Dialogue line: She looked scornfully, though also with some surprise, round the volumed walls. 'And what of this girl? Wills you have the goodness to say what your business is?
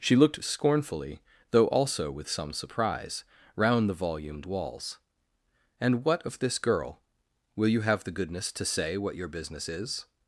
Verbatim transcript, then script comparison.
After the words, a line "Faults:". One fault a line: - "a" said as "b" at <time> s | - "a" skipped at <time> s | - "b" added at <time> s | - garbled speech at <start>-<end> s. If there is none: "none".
She looked scornfully, though also with some surprise, round the volumed walls. 'And what of this girl? Will you have the goodness to say what your business is?
Faults:
- "Wills" said as "Will" at 7.6 s